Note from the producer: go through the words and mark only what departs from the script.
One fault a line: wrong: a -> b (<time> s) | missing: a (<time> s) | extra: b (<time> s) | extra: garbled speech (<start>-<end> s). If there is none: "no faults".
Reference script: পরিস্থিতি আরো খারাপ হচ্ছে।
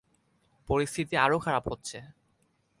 no faults